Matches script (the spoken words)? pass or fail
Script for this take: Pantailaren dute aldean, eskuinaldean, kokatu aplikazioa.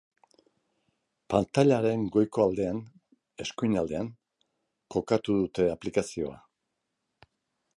fail